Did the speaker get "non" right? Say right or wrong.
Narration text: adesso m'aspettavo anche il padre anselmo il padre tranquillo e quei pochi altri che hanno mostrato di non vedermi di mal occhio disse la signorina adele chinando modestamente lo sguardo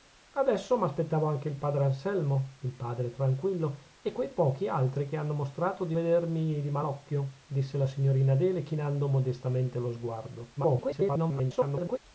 wrong